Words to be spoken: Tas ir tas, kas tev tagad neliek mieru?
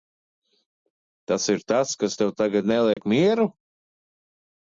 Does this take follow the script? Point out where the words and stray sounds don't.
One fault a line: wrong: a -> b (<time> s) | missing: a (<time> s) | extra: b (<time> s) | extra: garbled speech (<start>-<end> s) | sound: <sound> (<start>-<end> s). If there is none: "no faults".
sound: dropout (2.9-3.0 s)